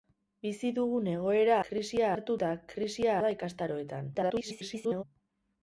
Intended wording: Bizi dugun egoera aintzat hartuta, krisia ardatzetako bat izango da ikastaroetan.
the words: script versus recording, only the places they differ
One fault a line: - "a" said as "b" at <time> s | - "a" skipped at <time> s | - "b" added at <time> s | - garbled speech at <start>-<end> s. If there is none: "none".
- "aintzat" said as "krisia" at 1.7 s
- "ardatzetako bat izango" skipped at 3.2 s
- garbled speech at 4.1-5.0 s